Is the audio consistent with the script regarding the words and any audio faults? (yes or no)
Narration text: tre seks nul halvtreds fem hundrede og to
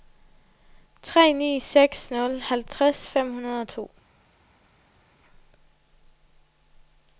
no